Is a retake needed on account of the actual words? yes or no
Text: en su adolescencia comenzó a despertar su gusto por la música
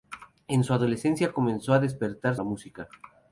yes